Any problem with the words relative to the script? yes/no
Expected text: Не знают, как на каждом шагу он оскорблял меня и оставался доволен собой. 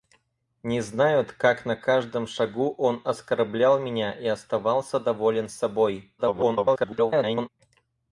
yes